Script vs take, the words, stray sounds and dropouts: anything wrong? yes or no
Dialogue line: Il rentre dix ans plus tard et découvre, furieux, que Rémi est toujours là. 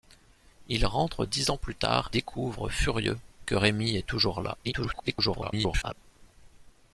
yes